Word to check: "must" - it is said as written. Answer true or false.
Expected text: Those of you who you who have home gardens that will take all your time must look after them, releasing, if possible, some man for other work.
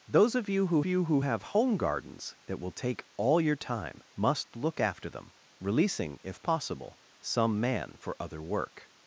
true